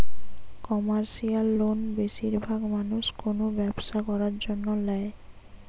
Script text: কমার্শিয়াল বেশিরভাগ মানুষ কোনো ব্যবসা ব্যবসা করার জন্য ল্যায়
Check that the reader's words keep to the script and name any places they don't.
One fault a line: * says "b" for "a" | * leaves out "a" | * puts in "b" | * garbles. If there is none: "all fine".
* puts in "লোন"
* leaves out "ব্যবসা"